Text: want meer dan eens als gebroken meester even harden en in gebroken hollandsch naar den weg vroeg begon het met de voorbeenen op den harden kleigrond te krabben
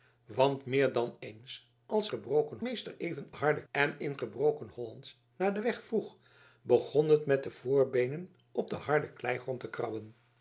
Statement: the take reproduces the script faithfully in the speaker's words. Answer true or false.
true